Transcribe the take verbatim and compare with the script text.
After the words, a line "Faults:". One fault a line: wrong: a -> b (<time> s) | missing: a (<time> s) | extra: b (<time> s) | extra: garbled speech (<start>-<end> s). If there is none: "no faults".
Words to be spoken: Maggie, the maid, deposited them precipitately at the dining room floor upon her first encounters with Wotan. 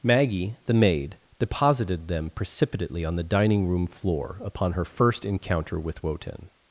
Maggie, the maid, deposited them precipitately on the dining room floor upon her first encounter with Wotan.
Faults:
wrong: at -> on (3.0 s)
wrong: encounters -> encounter (5.2 s)